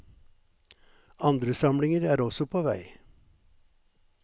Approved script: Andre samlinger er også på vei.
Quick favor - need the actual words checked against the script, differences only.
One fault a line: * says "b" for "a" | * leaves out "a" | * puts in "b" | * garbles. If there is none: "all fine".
all fine